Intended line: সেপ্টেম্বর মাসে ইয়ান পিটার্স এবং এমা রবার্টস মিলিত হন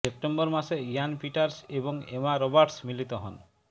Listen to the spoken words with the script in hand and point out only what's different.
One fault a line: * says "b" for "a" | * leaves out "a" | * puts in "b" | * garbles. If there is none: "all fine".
all fine